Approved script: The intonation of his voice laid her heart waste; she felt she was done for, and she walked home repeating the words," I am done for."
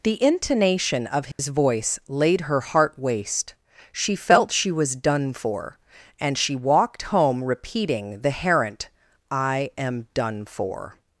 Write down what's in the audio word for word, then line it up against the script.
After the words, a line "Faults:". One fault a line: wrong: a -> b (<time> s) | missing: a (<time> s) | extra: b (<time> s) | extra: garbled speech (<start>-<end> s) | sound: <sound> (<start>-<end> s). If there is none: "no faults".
The intonation of his voice laid her heart waste; she felt she was done for, and she walked home repeating the herent," I am done for."
Faults:
sound: dropout (1.3-1.4 s)
wrong: words -> herent (8.3 s)